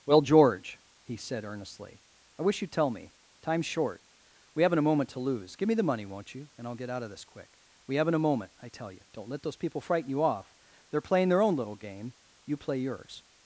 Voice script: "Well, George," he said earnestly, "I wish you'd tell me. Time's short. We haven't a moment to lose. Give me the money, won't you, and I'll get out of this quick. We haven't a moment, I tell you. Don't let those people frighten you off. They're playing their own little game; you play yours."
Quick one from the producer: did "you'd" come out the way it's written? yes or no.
yes